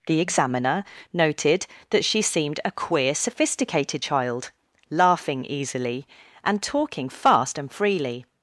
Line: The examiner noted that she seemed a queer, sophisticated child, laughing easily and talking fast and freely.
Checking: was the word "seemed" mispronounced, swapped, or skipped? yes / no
no